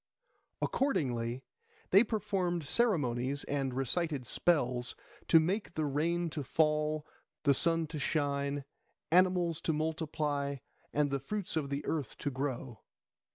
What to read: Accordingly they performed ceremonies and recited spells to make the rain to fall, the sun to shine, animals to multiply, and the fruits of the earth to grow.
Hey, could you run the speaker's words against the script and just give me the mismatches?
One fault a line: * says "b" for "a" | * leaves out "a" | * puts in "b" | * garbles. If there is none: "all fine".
all fine